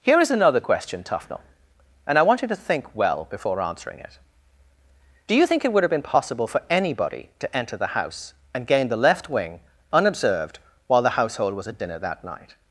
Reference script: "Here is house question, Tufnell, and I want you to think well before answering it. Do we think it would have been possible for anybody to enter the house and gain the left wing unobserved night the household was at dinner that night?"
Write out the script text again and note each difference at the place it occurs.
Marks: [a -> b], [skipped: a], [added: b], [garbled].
"Here is [house -> another] question, Tufnell, and I want you to think well before answering it. Do [we -> you] think it would have been possible for anybody to enter the house and gain the left wing unobserved [night -> while] the household was at dinner that night?"